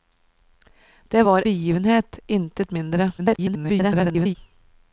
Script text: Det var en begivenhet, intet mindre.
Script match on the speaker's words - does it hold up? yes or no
no